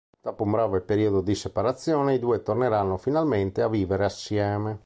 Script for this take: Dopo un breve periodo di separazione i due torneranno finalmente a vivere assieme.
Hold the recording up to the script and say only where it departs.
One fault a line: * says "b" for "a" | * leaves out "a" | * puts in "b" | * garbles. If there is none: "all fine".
all fine